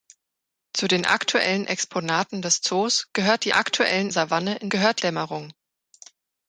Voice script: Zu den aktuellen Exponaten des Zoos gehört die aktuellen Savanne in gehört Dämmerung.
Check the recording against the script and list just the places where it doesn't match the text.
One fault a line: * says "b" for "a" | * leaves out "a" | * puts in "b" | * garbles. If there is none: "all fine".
all fine